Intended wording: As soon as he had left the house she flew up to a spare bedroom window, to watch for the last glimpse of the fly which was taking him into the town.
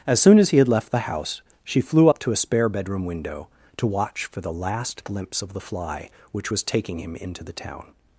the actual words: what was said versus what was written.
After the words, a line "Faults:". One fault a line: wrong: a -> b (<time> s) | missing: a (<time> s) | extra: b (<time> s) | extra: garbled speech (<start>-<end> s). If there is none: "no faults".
As soon as he had left the house she flew up to a spare bedroom window, to watch for the last glimpse of the fly which was taking him into the town.
Faults:
no faults